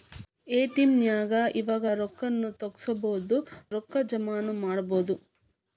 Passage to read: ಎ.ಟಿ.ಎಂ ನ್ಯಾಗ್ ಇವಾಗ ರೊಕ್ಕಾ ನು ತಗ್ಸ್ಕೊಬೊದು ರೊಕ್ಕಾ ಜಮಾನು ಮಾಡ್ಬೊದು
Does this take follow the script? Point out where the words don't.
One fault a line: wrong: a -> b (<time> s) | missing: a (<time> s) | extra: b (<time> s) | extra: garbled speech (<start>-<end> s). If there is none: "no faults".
no faults